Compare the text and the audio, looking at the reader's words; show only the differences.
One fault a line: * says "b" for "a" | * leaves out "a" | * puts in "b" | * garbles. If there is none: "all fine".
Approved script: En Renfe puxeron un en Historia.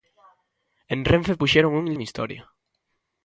all fine